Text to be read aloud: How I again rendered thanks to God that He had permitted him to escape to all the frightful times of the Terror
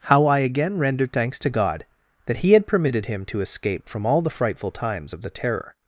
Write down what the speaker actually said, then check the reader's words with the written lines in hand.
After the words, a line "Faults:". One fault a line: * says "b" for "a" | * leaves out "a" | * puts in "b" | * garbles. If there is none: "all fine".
How I again rendered thanks to God that He had permitted him to escape from all the frightful times of the Terror
Faults:
* says "from" for "to"